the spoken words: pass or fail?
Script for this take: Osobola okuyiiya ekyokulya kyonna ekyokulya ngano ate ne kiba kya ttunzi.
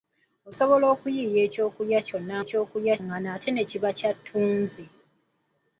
pass